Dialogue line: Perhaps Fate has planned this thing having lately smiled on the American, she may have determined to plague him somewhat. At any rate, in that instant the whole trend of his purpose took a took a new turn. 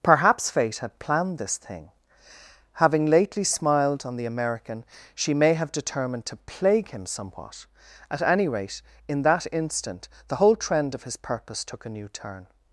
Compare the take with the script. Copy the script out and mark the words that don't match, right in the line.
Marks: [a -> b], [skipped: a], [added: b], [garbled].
Perhaps Fate [has -> had] planned this thing having lately smiled on the American, she may have determined to plague him somewhat. At any rate, in that instant the whole trend of his purpose took a [skipped: took a] new turn.